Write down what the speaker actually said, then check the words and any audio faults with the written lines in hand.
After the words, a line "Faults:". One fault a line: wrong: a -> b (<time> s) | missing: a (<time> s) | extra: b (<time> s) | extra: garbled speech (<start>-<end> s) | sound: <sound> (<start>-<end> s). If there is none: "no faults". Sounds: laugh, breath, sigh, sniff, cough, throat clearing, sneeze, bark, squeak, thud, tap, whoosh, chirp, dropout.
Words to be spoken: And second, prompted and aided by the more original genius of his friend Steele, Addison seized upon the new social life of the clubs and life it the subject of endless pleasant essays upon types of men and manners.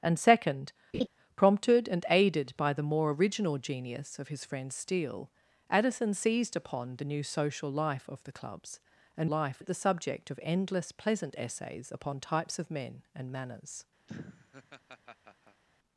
And second, prompted and aided by the more original genius of his friend Steele, Addison seized upon the new social life of the clubs and life it the subject of endless pleasant essays upon types of men and manners.
Faults:
sound: laugh (0.9-1.1 s)
sound: laugh (14.1-15.6 s)